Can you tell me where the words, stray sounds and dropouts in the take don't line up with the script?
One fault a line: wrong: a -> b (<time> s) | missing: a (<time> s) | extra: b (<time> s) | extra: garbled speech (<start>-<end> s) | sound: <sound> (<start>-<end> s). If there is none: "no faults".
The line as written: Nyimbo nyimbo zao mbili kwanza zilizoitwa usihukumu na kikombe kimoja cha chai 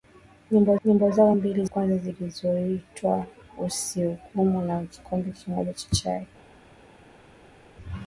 no faults